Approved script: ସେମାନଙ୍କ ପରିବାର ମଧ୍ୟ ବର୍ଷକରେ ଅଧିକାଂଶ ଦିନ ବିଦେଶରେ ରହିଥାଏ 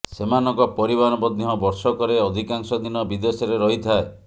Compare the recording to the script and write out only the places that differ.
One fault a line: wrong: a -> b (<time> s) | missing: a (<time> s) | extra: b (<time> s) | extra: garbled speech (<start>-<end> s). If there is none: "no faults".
no faults